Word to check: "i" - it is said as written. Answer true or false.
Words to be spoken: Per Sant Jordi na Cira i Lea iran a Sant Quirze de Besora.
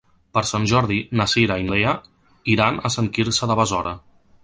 true